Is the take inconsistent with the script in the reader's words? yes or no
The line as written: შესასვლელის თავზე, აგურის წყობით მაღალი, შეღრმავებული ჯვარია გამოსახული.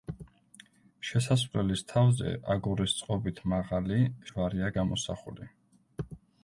yes